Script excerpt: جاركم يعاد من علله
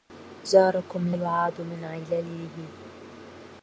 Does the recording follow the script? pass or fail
pass